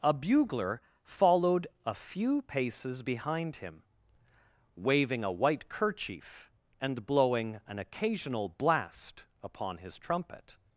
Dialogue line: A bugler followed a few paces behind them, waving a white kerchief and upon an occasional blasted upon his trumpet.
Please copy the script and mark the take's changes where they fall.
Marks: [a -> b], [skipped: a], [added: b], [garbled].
A bugler followed a few paces behind [them, -> him] waving a white kerchief and [upon -> blowing] an occasional [blasted -> blast] upon his trumpet.